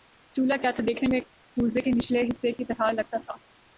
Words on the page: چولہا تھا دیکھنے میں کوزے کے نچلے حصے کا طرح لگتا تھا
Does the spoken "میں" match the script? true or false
true